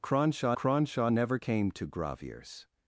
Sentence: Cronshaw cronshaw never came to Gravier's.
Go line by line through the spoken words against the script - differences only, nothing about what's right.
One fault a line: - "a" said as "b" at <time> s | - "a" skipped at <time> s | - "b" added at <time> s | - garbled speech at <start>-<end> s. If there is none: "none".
none